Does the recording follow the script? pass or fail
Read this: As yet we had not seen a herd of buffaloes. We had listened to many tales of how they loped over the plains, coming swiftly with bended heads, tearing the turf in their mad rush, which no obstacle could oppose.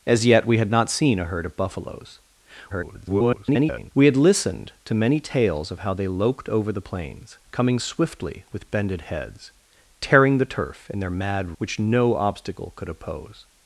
fail